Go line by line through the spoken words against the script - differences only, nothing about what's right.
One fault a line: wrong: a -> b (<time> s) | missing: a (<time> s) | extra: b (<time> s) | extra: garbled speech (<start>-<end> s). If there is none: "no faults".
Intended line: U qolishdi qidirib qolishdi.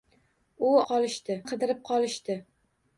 no faults